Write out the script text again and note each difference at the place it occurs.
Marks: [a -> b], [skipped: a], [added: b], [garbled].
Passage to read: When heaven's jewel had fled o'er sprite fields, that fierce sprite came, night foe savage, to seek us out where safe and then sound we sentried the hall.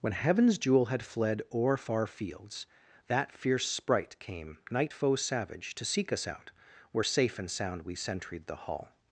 When heaven's jewel had fled o'er [sprite -> far] fields, that fierce sprite came, night foe savage, to seek us out where safe and [skipped: then] sound we sentried the hall.